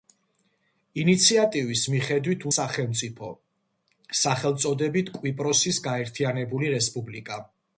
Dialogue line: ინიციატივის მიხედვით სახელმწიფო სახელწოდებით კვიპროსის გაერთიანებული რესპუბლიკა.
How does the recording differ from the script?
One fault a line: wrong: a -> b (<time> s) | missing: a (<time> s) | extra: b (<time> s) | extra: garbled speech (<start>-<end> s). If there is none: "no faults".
no faults